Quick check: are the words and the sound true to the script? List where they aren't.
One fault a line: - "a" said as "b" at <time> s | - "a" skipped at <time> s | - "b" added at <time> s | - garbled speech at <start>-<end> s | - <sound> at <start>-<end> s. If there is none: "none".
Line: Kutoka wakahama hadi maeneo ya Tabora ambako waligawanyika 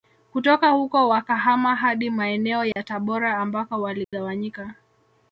- "huko" added at 0.7 s
- dropout at 2.7-2.8 s
- dropout at 4.0-4.1 s